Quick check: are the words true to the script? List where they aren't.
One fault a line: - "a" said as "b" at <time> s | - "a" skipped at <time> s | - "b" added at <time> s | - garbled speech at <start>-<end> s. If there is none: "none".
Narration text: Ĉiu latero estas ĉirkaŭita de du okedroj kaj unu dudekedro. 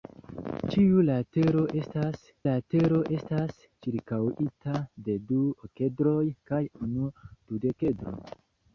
- "latero estas" added at 2.5 s